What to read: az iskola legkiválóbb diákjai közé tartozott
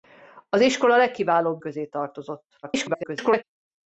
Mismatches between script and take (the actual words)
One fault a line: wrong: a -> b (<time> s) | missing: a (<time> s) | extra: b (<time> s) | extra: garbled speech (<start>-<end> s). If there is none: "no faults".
missing: diákjai (1.6 s)
extra: garbled speech (2.6-3.4 s)